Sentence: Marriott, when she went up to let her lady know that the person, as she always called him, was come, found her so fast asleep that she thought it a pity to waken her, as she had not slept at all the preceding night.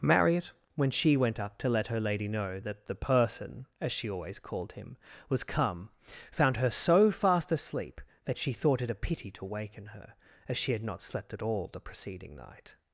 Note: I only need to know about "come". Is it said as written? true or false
true